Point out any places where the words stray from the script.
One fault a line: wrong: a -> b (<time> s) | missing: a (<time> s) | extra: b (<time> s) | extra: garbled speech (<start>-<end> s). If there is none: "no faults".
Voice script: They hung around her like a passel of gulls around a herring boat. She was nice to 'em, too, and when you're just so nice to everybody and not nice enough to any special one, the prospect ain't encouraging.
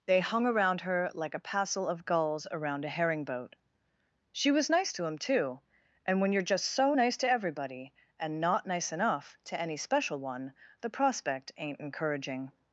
no faults